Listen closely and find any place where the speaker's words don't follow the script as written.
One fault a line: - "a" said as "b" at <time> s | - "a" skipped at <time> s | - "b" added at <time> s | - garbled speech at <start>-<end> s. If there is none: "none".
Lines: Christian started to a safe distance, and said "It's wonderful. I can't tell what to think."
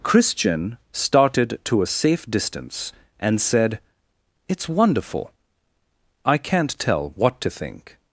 none